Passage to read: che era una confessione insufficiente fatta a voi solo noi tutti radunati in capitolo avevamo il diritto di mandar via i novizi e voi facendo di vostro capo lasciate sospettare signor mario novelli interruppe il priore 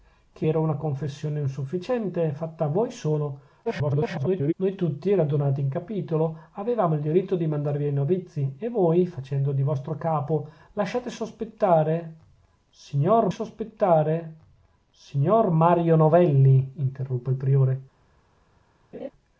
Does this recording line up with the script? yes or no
no